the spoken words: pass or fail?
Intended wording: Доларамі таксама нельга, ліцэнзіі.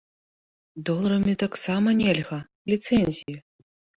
pass